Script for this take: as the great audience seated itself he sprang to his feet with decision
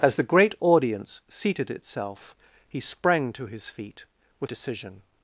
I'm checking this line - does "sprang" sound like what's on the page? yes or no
yes